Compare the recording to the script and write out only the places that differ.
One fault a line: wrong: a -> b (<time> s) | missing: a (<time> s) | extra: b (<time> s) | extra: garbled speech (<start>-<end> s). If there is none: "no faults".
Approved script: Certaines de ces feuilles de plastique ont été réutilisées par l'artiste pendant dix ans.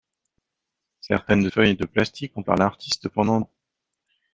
missing: ces (1.5 s)
missing: été réutilisées (2.4 s)
missing: dix (3.4 s)